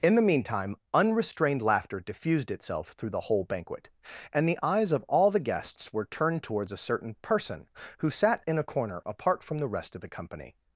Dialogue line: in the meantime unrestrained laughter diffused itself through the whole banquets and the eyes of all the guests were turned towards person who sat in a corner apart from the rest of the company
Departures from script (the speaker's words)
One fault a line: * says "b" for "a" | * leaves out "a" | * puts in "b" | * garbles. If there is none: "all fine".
* says "banquet" for "banquets"
* puts in "a certain"